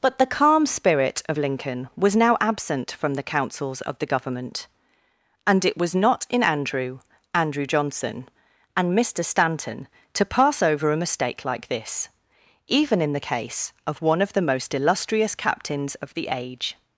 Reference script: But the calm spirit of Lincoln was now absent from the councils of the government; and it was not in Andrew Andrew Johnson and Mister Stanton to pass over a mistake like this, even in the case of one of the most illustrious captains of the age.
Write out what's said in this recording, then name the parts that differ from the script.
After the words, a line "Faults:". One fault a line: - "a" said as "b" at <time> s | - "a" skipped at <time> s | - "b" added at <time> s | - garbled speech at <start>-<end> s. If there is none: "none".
But the calm spirit of Lincoln was now absent from the councils of the government; and it was not in Andrew Andrew Johnson and Mister Stanton to pass over a mistake like this, even in the case of one of the most illustrious captains of the age.
Faults:
none